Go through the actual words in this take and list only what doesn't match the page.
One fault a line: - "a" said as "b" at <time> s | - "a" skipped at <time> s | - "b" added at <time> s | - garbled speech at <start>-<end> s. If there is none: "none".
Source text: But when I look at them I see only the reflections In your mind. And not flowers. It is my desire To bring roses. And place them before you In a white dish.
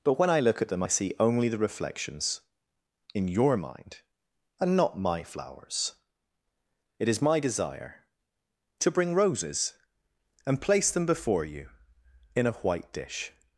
- "my" added at 5.0 s